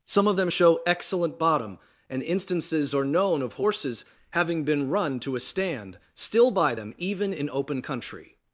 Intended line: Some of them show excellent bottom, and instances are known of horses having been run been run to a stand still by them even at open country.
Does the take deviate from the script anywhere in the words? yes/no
yes